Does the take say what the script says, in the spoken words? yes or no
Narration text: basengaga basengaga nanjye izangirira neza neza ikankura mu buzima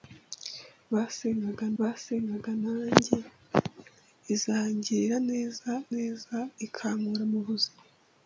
yes